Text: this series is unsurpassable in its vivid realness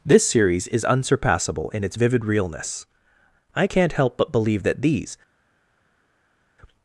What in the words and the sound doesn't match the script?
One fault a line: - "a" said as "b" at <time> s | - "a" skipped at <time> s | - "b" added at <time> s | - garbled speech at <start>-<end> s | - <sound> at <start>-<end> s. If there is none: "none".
- "i can't help but believe that these" added at 3.6 s